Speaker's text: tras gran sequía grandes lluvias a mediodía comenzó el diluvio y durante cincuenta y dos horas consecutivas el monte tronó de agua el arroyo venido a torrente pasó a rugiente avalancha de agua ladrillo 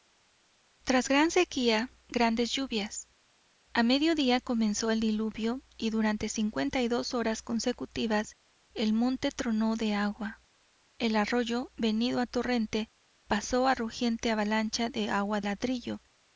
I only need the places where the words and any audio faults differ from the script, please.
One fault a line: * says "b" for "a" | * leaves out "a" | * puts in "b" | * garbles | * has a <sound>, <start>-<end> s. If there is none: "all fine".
all fine